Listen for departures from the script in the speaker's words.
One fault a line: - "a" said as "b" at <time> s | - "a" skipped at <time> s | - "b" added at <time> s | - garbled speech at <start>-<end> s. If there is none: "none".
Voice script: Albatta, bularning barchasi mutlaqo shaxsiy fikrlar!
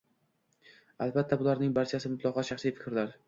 none